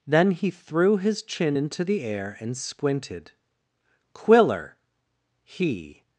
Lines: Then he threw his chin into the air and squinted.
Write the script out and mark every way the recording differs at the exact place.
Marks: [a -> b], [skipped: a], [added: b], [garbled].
Then he threw his chin into the air and squinted. [added: Quiller he]